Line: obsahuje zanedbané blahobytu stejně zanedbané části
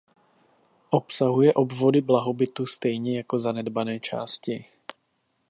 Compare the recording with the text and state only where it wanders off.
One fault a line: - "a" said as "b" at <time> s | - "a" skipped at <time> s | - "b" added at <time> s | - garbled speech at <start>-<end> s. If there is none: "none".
- "zanedbané" said as "obvody" at 1.5 s
- "jako" added at 3.2 s